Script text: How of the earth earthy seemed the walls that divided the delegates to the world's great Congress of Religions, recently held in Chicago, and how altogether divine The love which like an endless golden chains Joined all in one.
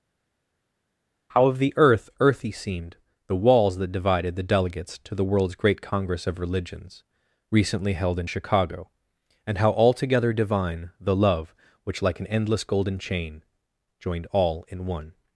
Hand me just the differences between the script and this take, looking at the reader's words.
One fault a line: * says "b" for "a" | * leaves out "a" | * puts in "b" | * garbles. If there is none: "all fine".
* says "chain" for "chains"